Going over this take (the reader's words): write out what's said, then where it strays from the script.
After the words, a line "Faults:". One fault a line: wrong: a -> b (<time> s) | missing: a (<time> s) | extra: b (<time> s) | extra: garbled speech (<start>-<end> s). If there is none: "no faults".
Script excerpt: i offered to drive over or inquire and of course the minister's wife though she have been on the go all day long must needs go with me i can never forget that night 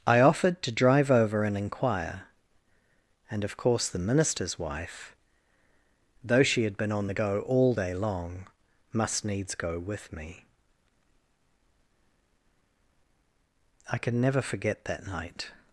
i offered to drive over and inquire and of course the minister's wife though she had been on the go all day long must needs go with me i can never forget that night
Faults:
wrong: or -> and (1.4 s)
wrong: have -> had (6.6 s)